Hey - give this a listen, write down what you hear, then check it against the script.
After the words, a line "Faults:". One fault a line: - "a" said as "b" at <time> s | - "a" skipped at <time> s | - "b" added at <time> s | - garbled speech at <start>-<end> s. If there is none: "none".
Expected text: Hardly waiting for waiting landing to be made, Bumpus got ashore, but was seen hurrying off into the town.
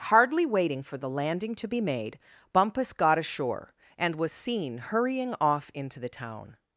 Hardly waiting for the landing to be made, Bumpus got ashore, and was seen hurrying off into the town.
Faults:
- "waiting" said as "the" at 1.0 s
- "but" said as "and" at 4.0 s